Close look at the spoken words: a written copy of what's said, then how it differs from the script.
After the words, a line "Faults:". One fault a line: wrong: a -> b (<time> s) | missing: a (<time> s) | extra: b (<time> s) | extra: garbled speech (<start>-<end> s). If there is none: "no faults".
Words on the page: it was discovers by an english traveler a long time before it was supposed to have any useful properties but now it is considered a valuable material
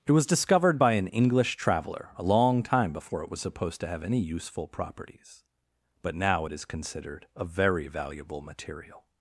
it was discovered by an english traveler a long time before it was supposed to have any useful properties but now it is considered a very valuable material
Faults:
wrong: discovers -> discovered (0.2 s)
extra: very (7.4 s)